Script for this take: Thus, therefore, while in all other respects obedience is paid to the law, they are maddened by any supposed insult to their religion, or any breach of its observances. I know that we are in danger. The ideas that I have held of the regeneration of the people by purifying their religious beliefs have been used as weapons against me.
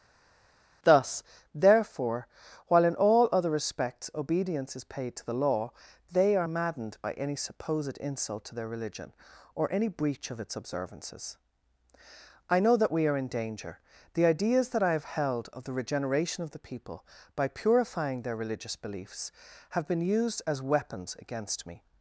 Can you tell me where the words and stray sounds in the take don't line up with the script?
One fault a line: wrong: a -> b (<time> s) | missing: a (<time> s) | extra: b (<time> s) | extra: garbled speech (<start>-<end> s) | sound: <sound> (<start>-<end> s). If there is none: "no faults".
no faults